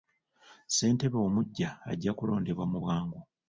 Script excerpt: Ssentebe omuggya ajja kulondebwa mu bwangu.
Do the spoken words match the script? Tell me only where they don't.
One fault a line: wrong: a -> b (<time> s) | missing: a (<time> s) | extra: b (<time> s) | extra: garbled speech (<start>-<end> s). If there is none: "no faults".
no faults